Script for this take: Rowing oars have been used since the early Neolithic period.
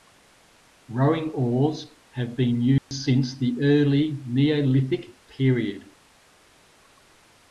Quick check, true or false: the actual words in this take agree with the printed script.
true